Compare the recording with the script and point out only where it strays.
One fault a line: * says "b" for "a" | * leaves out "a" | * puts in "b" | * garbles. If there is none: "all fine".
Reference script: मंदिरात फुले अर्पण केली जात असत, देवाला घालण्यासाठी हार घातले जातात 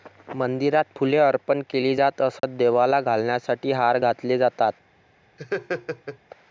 all fine